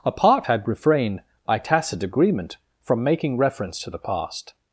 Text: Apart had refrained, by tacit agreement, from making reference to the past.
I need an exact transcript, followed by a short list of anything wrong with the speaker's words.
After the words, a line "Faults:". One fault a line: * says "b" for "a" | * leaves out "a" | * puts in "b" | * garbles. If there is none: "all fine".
Apart had refrained, by tacit agreement, from making reference to the past.
Faults:
all fine